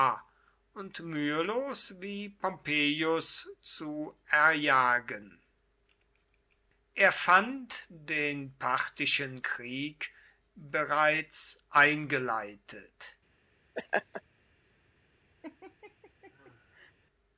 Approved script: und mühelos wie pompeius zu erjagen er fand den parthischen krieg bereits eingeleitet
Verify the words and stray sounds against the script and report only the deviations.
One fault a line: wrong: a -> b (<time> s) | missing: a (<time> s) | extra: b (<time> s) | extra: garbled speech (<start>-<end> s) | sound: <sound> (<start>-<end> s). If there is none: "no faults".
sound: laugh (13.8-14.2 s)
sound: laugh (15.4-16.9 s)